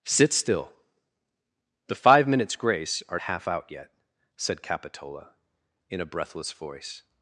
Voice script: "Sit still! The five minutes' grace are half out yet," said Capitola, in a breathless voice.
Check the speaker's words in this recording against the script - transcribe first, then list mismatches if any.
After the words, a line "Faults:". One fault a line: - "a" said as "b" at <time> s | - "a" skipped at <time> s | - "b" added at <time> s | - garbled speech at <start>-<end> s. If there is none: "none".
"Sit still! The five minutes' grace are half out yet," said Capitola, in a breathless voice.
Faults:
none